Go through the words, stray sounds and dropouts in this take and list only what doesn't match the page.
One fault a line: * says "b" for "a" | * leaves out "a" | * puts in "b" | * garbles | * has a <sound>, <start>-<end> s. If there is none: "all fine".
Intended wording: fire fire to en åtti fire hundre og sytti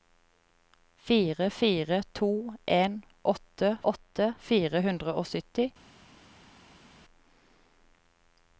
* puts in "åtti"